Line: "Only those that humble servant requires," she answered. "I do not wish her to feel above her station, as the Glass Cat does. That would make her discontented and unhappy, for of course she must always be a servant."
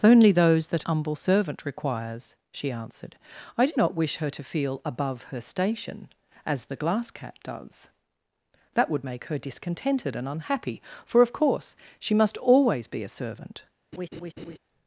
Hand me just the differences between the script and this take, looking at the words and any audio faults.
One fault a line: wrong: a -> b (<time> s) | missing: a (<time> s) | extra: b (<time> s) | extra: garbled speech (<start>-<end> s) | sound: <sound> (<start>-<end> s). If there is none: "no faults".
sound: laugh (13.9-14.6 s)